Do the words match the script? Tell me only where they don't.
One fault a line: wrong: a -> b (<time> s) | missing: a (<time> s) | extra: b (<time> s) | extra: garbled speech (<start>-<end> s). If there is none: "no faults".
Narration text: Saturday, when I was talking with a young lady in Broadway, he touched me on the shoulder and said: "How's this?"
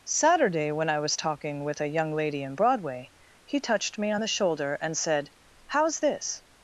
no faults